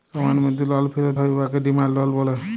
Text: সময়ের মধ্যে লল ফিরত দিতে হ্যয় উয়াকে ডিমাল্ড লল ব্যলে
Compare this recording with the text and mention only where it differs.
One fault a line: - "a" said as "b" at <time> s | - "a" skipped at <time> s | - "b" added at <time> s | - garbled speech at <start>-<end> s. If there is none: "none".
- "দিতে" skipped at 1.1 s